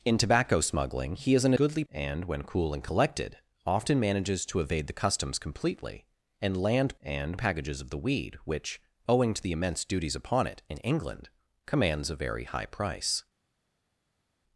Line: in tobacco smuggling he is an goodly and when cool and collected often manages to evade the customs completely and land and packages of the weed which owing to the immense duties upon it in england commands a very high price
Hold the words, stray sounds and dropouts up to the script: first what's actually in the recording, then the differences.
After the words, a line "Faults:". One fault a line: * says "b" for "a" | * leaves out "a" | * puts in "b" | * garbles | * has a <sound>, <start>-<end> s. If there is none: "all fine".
in tobacco smuggling he is an goodly and when cool and collected often manages to evade the customs completely and land and packages of the weed which owing to the immense duties upon it in england commands a very high price
Faults:
all fine